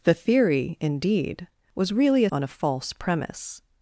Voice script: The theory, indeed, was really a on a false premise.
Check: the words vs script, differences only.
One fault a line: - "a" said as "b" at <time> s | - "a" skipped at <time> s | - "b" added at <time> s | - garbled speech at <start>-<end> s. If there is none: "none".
none